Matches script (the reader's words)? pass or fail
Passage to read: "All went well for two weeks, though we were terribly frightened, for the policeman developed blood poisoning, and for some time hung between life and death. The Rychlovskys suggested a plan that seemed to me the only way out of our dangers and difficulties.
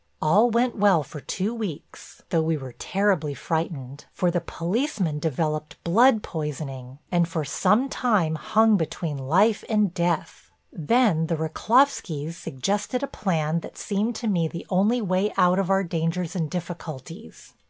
fail